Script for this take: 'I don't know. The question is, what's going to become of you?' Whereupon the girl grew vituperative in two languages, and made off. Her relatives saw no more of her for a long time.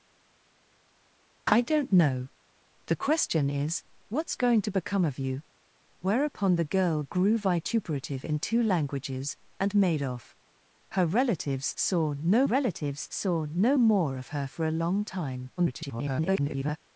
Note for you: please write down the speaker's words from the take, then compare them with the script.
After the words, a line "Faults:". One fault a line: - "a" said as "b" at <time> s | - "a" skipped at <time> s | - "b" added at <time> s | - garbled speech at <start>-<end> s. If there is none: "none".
'I don't know. The question is, what's going to become of you?' Whereupon the girl grew vituperative in two languages, and made off. Her relatives saw no relatives saw no more of her for a long time. [garbled]
Faults:
- "relatives saw no" added at 12.4 s
- garbled speech at 15.6-16.8 s